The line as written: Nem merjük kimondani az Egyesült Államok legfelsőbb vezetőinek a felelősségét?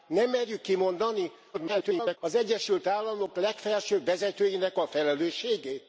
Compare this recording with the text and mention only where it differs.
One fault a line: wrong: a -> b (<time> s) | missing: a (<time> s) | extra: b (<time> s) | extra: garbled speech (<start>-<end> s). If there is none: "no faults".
extra: garbled speech (1.5-2.2 s)